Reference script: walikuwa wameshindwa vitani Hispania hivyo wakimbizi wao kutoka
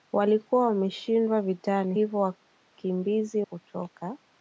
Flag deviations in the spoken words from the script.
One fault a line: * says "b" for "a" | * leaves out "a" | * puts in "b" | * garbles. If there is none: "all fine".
* leaves out "Hispania"
* leaves out "wao"